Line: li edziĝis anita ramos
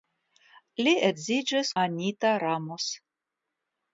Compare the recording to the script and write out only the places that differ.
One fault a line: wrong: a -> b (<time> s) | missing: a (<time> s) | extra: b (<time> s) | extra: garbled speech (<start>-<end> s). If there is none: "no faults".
no faults